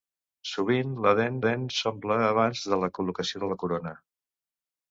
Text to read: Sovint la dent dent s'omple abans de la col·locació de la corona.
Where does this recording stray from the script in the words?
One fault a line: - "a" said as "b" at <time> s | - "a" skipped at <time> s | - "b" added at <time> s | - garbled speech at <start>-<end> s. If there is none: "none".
none